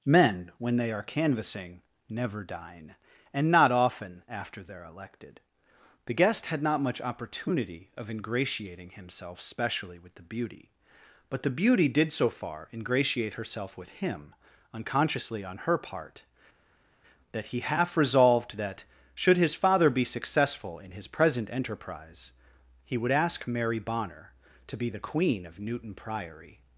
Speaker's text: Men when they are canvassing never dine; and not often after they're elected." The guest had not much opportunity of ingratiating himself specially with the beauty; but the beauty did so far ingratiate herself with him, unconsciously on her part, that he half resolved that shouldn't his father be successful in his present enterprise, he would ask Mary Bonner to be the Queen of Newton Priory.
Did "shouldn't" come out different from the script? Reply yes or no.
yes